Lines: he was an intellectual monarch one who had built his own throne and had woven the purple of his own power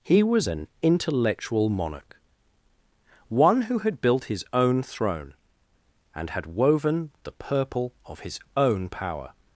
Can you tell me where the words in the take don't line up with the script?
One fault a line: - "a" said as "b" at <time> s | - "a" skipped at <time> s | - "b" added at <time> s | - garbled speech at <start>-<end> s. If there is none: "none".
none